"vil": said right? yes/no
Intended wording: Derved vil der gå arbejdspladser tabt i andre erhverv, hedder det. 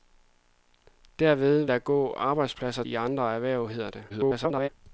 no